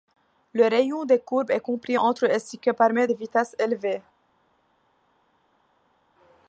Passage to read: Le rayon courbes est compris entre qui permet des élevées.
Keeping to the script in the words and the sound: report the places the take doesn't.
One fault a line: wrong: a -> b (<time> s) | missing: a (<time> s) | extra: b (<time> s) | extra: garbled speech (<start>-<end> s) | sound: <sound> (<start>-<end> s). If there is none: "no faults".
extra: des (1.1 s)
extra: et ce (2.2 s)
extra: vitesses (3.1 s)